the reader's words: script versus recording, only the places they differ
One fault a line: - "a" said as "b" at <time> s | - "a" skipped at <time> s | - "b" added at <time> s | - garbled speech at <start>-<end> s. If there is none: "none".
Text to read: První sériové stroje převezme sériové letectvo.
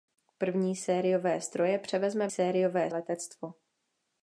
none